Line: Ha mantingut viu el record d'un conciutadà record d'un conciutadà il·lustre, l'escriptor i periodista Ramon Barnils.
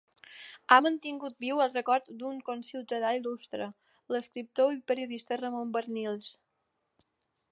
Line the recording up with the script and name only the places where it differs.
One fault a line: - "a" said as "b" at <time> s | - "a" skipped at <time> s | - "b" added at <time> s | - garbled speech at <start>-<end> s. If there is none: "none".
- "record d'un conciutadà" skipped at 3.1 s